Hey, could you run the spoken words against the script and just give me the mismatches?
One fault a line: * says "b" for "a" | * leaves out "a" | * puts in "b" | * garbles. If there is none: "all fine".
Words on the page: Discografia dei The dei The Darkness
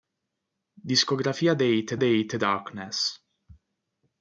all fine